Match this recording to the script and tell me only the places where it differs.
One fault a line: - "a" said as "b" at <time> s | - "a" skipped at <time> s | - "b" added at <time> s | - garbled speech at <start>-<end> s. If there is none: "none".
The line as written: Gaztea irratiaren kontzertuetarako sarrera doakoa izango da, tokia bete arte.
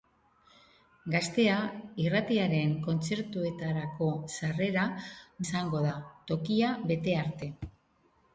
- "doakoa" skipped at 4.9 s